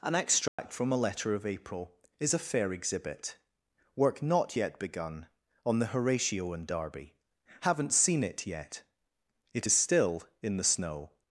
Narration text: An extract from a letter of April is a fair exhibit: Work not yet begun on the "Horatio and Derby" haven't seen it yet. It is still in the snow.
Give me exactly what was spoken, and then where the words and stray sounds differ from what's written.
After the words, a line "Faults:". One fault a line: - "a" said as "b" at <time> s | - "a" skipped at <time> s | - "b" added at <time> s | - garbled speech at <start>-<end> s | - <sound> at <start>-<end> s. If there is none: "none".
An extract from a letter of April is a fair exhibit: Work not yet begun on the "Horatio and Derby" haven't seen it yet. It is still in the snow.
Faults:
- dropout at 0.5-0.6 s